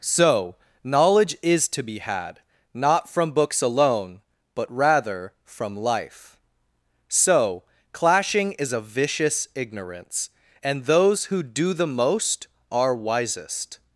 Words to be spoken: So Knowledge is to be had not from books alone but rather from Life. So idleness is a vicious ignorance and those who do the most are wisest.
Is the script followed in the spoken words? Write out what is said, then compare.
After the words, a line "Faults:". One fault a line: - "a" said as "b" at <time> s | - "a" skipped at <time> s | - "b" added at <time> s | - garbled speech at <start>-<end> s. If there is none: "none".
So Knowledge is to be had not from books alone but rather from Life. So clashing is a vicious ignorance and those who do the most are wisest.
Faults:
- "idleness" said as "clashing" at 7.9 s